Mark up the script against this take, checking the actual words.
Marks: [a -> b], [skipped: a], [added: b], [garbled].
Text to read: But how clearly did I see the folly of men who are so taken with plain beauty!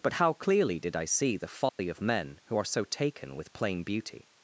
But how clearly did I see the folly of men who are so taken with plain beauty!